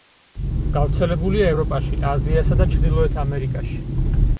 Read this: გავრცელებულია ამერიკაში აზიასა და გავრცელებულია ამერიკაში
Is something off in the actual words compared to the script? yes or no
yes